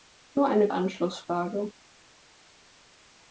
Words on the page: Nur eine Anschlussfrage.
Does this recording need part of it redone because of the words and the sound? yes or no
no